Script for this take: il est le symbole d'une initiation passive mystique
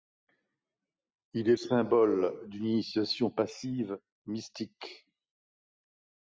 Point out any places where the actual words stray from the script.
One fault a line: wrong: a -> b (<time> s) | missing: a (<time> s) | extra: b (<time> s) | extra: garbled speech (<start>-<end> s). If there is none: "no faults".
missing: le (1.6 s)